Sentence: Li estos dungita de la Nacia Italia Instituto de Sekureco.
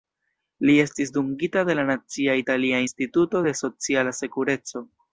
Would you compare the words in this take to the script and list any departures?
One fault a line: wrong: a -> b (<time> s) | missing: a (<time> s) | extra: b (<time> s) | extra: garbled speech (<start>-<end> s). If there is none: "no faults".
wrong: estos -> estis (0.8 s)
extra: Sociala (3.6 s)